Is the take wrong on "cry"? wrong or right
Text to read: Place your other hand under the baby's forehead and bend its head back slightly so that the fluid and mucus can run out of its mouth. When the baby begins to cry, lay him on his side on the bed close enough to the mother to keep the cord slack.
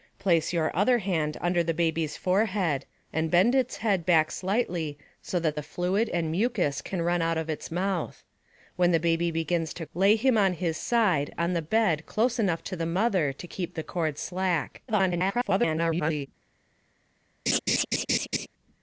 wrong